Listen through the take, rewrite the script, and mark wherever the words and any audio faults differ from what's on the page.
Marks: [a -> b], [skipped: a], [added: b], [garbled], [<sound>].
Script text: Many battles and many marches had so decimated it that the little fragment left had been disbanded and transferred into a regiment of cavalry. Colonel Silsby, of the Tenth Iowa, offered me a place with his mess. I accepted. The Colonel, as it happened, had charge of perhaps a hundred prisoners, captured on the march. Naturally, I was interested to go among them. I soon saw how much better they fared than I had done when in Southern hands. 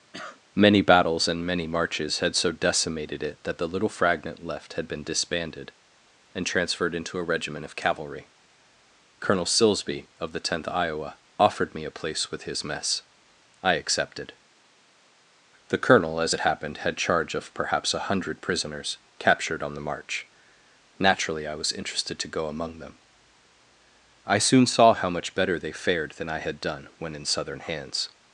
[cough] Many battles and many marches had so decimated it that the little fragment left had been disbanded and transferred into a regiment of cavalry. Colonel Silsby, of the Tenth Iowa, offered me a place with his mess. I accepted. The Colonel, as it happened, had charge of perhaps a hundred prisoners, captured on the march. Naturally, I was interested to go among them. I soon saw how much better they fared than I had done when in Southern hands.